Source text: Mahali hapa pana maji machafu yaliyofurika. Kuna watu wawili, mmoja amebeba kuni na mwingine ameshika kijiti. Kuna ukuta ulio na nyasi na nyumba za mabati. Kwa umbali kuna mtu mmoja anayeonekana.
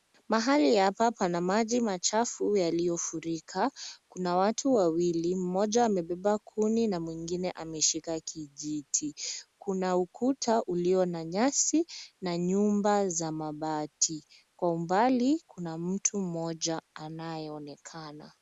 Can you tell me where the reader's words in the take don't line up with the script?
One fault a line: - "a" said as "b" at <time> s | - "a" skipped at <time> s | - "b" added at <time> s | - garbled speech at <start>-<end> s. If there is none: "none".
none